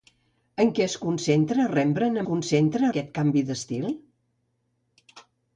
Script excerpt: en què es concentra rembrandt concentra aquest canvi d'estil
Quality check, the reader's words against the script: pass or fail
pass